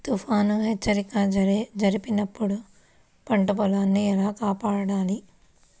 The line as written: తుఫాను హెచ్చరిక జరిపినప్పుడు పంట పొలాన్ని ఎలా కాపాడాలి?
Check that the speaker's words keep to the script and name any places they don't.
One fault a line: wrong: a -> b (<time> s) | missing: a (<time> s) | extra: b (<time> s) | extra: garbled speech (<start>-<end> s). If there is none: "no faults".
no faults